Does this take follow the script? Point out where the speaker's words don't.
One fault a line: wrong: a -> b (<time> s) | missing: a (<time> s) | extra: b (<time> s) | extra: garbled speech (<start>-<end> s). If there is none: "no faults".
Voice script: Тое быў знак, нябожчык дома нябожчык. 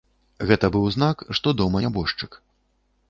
wrong: Тое -> Гэта (0.5 s)
wrong: нябожчык -> што (1.4 s)